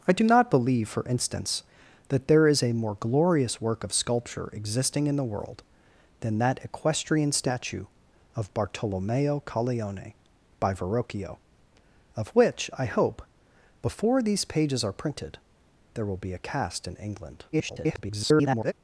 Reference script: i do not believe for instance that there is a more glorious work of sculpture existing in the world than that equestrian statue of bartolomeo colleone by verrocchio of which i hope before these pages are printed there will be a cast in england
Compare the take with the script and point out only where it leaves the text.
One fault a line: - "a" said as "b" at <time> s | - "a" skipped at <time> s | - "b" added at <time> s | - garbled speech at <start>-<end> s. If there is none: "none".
- garbled speech at 17.5-18.7 s